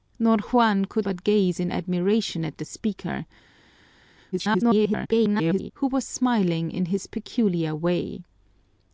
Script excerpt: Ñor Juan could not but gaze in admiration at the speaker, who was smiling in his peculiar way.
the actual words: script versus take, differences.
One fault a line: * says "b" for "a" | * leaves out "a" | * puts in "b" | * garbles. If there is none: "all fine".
* leaves out "not"
* garbles